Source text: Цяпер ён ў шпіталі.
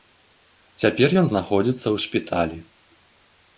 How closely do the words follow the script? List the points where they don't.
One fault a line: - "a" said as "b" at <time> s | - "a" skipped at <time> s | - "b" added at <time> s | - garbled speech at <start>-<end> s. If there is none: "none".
- "знаходзіцца" added at 1.3 s